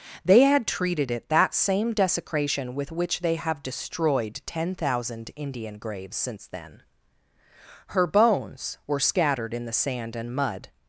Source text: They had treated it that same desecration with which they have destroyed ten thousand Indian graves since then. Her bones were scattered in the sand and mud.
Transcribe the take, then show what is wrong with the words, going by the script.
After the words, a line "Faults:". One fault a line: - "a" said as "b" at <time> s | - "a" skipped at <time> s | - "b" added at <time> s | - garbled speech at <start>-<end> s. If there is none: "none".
They had treated it that same desecration with which they have destroyed ten thousand Indian graves since then. Her bones were scattered in the sand and mud.
Faults:
none